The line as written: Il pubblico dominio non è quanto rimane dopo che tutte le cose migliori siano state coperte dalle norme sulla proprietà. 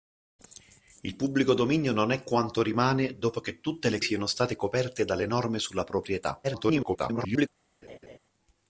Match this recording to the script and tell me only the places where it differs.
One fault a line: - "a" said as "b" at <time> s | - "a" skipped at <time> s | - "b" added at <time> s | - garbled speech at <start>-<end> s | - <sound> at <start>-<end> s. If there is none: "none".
- "cose migliori" skipped at 4.0 s
- garbled speech at 6.4-7.5 s
- laugh at 7.8-8.2 s